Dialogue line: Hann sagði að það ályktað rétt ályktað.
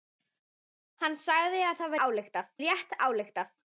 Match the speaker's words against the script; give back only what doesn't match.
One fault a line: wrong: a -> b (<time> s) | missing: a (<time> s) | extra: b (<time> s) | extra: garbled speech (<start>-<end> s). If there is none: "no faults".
no faults